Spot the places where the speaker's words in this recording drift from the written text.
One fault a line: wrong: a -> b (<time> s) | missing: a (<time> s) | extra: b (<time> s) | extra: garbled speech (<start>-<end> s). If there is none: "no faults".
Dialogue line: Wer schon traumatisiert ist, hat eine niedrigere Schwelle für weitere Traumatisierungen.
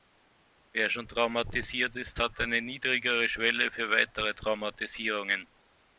no faults